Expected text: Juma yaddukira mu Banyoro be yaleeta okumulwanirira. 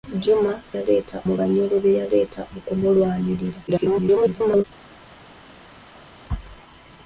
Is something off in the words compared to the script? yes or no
yes